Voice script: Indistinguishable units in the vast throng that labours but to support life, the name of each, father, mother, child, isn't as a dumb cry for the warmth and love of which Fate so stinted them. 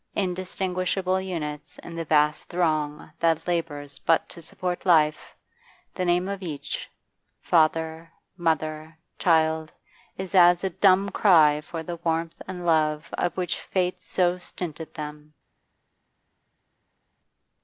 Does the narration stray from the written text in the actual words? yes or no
yes